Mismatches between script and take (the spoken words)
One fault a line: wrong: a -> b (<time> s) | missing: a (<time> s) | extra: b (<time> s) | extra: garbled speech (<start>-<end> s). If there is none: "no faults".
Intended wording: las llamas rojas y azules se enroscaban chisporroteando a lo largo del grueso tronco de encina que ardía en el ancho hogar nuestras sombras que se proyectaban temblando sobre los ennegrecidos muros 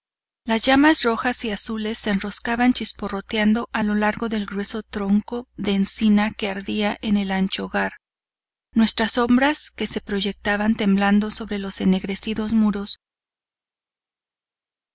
no faults